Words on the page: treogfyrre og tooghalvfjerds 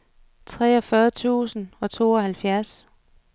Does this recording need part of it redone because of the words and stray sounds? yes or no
yes